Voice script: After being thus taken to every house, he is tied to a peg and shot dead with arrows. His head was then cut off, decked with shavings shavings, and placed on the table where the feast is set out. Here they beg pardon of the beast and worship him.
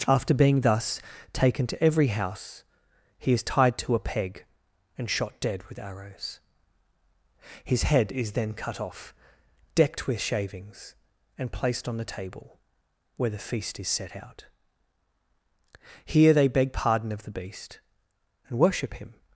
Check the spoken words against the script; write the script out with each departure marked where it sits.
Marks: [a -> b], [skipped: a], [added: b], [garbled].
After being thus taken to every house, he is tied to a peg and shot dead with arrows. His head [was -> is] then cut off, decked with shavings [skipped: shavings,] and placed on the table where the feast is set out. Here they beg pardon of the beast and worship him.